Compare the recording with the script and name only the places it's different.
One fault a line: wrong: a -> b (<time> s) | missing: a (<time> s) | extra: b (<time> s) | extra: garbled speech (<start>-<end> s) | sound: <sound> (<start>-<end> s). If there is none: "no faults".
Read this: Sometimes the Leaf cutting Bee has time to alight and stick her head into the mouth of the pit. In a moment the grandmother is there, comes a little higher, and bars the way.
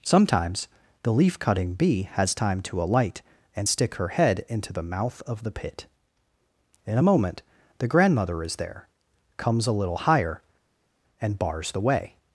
no faults